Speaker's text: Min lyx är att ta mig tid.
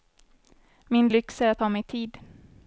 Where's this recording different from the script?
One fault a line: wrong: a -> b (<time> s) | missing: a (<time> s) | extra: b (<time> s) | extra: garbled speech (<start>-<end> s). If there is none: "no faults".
no faults